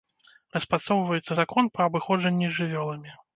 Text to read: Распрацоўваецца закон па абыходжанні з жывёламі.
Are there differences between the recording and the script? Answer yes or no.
no